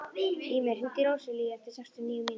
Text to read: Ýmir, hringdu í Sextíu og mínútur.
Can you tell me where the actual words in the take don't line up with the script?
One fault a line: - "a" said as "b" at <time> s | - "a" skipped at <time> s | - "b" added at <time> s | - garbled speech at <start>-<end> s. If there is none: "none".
- "Róselíu eftir" added at 1.1 s
- "níu" added at 2.1 s